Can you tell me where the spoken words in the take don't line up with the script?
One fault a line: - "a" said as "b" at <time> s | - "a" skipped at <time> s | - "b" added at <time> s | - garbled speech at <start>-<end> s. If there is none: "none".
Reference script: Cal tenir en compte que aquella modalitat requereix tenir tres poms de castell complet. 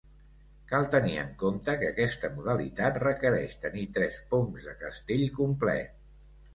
- "aquella" said as "aquesta" at 1.9 s